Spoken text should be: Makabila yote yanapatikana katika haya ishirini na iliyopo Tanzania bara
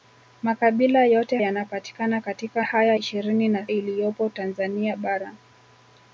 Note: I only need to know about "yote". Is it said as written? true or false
true